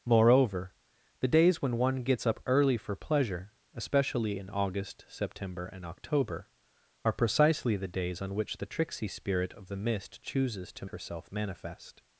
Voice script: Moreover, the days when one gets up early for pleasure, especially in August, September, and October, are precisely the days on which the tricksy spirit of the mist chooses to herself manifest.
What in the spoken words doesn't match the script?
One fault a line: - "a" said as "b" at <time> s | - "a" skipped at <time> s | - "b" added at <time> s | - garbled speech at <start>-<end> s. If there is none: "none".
none